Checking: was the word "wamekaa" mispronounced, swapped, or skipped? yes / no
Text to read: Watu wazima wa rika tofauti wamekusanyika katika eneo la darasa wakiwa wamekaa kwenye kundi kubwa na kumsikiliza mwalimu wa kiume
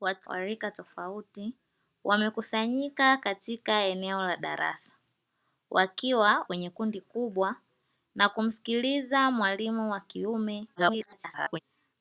yes